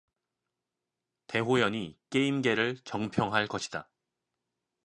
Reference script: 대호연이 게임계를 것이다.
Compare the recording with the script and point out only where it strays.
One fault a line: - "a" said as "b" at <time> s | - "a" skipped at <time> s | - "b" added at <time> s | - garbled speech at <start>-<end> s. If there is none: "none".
- "정평할" added at 2.8 s